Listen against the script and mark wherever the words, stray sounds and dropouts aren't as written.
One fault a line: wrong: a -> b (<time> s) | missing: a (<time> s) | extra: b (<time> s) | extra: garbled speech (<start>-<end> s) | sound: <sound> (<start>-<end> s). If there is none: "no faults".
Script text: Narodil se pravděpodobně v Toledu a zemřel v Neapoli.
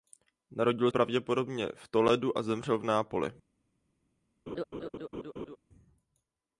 missing: se (0.9 s)
sound: laugh (4.5-5.6 s)